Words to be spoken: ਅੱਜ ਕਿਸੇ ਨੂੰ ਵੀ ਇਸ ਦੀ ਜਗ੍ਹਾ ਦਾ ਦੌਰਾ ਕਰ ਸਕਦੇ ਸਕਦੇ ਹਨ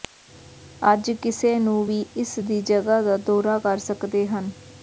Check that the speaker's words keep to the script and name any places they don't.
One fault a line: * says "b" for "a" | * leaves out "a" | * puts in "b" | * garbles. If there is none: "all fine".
* leaves out "ਸਕਦੇ"